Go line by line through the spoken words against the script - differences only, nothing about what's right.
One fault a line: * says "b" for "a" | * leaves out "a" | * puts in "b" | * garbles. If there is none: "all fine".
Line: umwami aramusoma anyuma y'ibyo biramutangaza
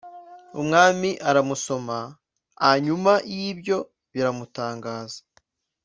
all fine